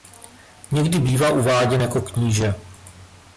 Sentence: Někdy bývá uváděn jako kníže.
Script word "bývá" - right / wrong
right